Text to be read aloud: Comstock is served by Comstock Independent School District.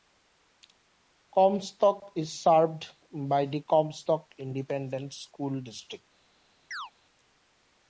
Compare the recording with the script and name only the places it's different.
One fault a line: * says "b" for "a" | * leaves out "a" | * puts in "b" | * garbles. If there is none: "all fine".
* puts in "the"